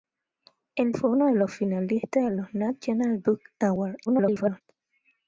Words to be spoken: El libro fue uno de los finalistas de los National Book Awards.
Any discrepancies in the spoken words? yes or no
yes